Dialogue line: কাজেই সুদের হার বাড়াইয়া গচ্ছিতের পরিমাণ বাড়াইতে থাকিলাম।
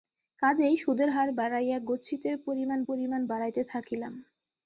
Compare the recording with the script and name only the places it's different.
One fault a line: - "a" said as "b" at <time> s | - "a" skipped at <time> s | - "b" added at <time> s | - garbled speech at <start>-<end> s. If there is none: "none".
- "পরিমাণ" added at 2.9 s